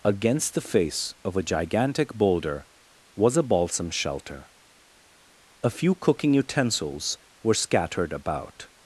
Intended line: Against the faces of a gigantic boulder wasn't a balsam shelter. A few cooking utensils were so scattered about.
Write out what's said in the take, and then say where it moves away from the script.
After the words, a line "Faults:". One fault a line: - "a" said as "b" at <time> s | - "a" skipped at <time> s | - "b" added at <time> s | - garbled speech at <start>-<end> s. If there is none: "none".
Against the face of a gigantic boulder was a balsam shelter. A few cooking utensils were scattered about.
Faults:
- "faces" said as "face" at 0.6 s
- "wasn't" said as "was" at 3.1 s
- "so" skipped at 7.5 s